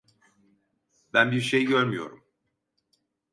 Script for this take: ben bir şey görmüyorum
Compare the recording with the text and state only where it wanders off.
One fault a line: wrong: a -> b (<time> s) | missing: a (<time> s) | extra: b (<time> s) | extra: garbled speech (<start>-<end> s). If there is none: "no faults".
no faults